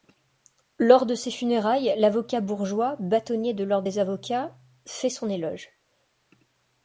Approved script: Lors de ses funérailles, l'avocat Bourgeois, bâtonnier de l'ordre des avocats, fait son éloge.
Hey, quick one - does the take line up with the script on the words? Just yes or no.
yes